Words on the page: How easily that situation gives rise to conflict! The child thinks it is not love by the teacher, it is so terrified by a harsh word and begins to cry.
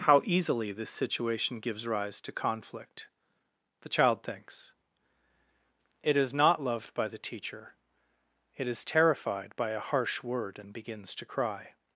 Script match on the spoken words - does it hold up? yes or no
no